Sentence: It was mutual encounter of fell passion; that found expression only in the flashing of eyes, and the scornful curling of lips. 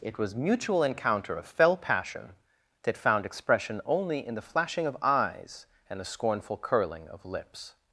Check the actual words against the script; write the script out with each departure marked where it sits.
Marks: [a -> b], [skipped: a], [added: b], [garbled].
It was mutual encounter of fell passion; that found expression only in the flashing of eyes, and the scornful curling of lips.